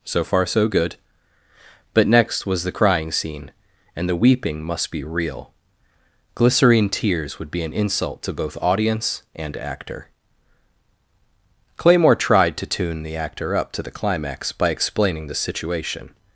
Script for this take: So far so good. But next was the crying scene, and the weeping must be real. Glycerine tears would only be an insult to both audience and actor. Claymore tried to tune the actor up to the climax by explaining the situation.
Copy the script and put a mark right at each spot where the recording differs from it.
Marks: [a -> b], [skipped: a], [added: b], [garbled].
So far so good. But next was the crying scene, and the weeping must be real. Glycerine tears would [skipped: only] be an insult to both audience and actor. Claymore tried to tune the actor up to the climax by explaining the situation.